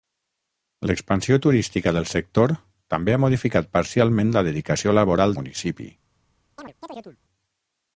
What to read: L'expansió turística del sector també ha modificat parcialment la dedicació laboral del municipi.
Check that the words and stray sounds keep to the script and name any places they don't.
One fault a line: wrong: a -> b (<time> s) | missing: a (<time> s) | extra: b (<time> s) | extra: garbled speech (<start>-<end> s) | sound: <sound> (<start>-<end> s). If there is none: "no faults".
missing: del (5.4 s)
sound: chirp (6.6-7.2 s)